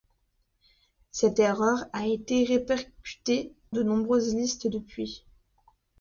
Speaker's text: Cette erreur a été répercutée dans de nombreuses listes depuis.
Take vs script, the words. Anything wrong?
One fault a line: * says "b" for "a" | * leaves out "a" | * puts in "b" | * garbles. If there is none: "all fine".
* leaves out "dans"